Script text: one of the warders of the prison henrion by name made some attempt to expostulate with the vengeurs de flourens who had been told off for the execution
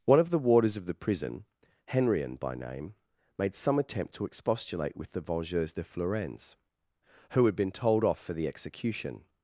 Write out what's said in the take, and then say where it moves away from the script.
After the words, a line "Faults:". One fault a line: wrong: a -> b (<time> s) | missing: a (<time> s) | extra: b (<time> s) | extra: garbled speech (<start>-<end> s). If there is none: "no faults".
one of the warders of the prison henrion by name made some attempt to expostulate with the vengeurs de flourens who had been told off for the execution
Faults:
no faults